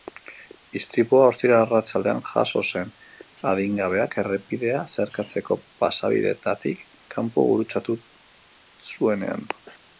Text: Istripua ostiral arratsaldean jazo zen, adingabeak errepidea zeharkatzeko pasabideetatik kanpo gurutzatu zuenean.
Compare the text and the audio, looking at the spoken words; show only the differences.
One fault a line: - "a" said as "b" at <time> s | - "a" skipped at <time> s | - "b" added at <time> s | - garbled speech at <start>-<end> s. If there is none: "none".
none